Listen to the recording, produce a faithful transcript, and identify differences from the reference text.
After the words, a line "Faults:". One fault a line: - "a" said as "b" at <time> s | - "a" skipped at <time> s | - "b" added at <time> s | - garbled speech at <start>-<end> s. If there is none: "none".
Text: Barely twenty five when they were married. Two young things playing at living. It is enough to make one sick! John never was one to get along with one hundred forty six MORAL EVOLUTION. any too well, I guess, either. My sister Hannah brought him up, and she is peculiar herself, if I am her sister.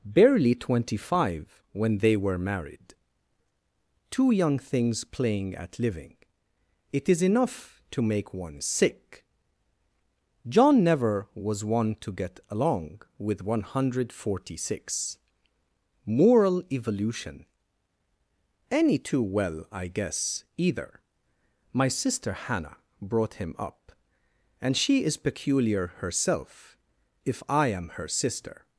Barely twenty five when they were married. Two young things playing at living. It is enough to make one sick! John never was one to get along with one hundred forty six MORAL EVOLUTION. any too well, I guess, either. My sister Hannah brought him up, and she is peculiar herself, if I am her sister.
Faults:
none